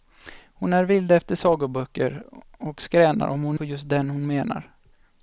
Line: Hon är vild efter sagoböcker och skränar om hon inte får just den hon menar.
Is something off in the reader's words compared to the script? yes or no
yes